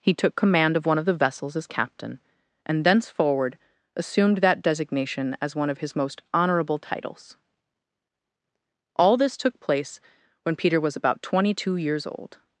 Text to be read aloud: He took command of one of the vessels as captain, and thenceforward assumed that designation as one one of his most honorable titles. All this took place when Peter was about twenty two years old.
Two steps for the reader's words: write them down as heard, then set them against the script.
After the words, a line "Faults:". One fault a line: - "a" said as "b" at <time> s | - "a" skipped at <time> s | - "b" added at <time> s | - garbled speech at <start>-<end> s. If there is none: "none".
He took command of one of the vessels as captain, and thenceforward assumed that designation as one of his most honorable titles. All this took place when Peter was about twenty two years old.
Faults:
- "one" skipped at 5.7 s